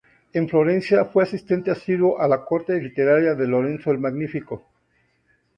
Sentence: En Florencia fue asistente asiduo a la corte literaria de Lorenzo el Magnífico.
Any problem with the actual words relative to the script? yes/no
no